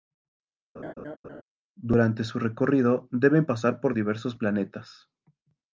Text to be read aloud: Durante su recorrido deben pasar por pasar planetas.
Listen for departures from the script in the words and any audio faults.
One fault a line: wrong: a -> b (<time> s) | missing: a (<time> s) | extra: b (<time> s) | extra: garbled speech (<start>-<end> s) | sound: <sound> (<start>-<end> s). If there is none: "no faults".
sound: laugh (0.8-1.4 s)
wrong: pasar -> diversos (3.9 s)